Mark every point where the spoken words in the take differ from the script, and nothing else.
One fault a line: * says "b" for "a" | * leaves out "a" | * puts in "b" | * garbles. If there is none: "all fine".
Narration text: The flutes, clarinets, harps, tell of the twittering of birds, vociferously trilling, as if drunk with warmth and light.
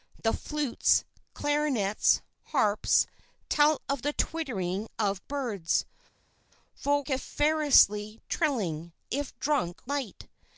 * leaves out "as"
* leaves out "with warmth and"